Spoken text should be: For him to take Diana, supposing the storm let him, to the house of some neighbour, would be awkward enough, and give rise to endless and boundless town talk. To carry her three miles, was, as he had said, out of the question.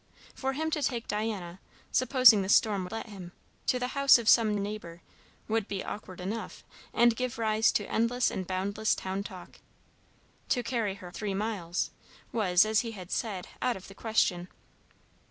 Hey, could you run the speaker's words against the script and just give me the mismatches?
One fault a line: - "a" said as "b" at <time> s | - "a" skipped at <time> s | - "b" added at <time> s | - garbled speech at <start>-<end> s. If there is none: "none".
none